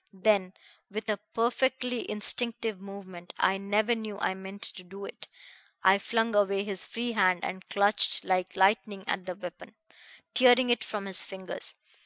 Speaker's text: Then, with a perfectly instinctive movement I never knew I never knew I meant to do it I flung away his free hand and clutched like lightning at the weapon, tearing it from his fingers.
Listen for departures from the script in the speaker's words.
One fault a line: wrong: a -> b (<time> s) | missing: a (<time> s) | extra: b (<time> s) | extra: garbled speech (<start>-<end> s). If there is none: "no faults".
missing: never knew I (4.3 s)